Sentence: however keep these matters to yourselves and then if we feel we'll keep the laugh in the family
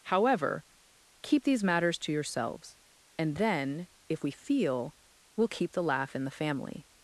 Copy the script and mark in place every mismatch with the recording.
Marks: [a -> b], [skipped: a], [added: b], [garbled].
however keep these matters to yourselves and then if we feel we'll keep the laugh in the family